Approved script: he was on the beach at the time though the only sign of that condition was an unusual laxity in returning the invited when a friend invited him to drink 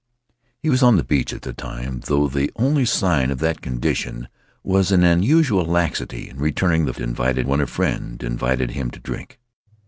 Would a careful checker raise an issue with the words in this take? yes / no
no